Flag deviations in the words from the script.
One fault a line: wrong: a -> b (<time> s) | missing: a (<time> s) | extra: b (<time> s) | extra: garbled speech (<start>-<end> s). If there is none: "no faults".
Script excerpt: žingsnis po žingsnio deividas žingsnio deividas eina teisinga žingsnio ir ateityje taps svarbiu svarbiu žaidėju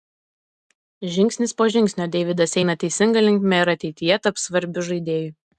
missing: žingsnio deividas (2.6 s)
wrong: žingsnio -> linkme (3.3 s)
missing: svarbiu (4.9 s)